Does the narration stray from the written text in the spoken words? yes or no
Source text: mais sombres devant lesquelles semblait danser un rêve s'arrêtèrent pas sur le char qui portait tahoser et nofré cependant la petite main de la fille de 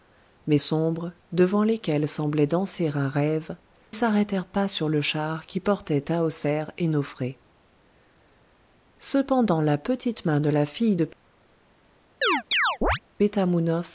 no